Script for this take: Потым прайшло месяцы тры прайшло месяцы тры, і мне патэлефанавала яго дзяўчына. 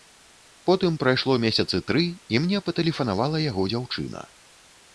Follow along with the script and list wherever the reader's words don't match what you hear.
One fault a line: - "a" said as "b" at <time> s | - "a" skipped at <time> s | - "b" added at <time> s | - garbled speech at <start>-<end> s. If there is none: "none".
- "прайшло месяцы тры" skipped at 2.0 s